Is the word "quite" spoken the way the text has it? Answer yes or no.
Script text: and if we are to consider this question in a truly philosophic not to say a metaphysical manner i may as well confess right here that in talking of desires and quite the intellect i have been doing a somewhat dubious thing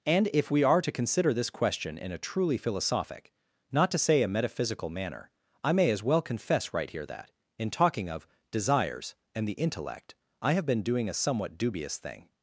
no